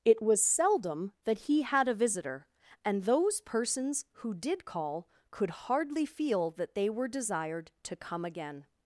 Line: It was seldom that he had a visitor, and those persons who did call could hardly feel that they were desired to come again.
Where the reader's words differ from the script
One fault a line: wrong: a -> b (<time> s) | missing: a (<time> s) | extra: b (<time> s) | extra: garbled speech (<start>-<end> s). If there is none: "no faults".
no faults